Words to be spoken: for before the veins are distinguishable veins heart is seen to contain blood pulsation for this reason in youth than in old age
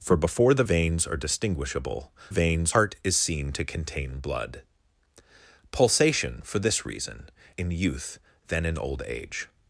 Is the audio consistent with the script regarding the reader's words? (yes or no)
yes